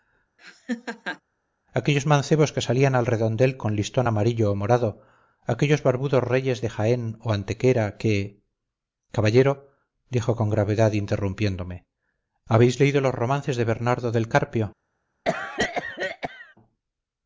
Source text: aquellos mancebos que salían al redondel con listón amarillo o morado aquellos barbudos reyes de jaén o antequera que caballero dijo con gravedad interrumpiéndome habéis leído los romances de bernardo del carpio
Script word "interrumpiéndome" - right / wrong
right